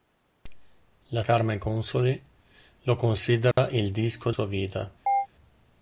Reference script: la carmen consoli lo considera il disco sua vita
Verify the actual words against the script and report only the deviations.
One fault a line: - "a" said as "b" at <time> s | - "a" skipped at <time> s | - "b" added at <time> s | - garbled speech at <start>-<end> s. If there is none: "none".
none